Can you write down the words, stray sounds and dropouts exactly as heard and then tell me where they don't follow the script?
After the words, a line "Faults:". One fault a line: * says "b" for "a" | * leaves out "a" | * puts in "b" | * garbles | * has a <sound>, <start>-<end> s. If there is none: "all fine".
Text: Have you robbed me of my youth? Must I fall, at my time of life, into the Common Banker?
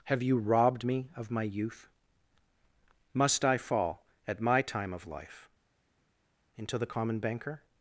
Have you robbed me of my youth? Must I fall, at my time of life, into the Common Banker?
Faults:
all fine